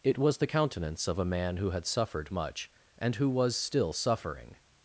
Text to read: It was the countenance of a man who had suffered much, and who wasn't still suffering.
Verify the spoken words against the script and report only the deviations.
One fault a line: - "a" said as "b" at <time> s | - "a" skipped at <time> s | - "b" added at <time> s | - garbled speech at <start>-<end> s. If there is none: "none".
- "wasn't" said as "was" at 3.3 s